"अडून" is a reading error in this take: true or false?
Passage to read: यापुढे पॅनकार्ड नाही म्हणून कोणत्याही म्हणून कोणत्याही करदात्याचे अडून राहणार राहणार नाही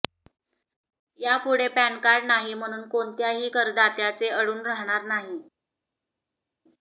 false